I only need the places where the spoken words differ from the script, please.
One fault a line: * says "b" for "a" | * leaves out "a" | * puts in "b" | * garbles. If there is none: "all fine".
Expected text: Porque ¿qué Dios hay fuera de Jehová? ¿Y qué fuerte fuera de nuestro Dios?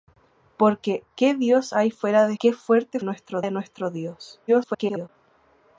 * leaves out "Jehová Y"
* says "nuestro" for "fuera"
* garbles